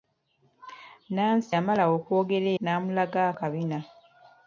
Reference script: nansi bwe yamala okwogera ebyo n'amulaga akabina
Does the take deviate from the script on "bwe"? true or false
true